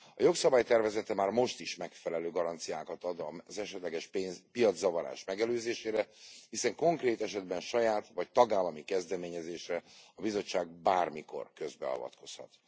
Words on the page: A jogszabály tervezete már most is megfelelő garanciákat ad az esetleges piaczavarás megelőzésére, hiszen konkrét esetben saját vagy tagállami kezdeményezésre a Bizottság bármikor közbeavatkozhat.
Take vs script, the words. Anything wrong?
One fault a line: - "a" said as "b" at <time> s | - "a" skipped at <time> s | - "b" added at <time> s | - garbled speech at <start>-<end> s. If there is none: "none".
none